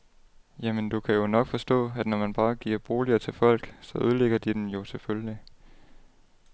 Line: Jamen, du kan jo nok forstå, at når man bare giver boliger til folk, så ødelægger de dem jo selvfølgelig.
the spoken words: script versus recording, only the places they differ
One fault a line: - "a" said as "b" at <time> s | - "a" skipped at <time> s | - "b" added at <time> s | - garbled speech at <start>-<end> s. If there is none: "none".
none